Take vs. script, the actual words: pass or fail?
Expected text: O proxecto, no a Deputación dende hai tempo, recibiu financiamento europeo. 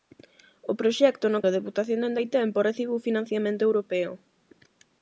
pass